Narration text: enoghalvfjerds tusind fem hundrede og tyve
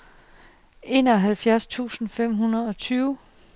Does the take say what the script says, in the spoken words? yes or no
yes